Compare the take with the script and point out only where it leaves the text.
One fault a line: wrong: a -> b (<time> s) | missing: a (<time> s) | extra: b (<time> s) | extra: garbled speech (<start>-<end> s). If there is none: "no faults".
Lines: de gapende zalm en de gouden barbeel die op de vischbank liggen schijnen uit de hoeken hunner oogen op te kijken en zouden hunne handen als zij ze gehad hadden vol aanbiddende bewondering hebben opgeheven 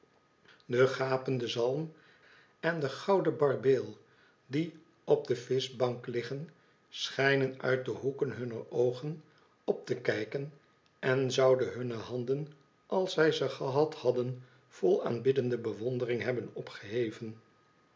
no faults